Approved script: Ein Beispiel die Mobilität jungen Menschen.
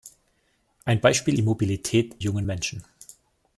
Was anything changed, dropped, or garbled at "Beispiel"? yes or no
no